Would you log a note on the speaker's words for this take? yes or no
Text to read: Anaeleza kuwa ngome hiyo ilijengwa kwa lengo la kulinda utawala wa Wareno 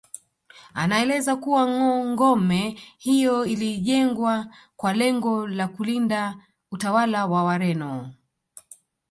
no